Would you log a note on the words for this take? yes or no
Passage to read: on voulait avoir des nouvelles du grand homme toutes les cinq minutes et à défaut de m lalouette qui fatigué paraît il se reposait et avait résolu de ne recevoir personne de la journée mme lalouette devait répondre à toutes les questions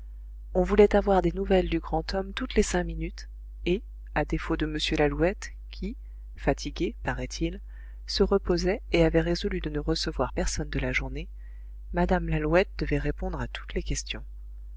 no